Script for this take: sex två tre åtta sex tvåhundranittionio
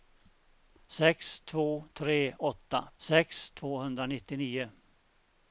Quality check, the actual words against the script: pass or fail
pass